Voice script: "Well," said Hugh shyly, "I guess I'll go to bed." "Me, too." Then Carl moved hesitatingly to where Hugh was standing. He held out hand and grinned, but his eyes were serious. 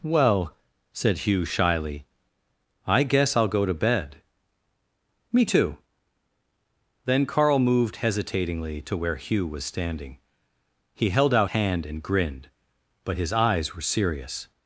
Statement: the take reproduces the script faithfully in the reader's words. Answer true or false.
true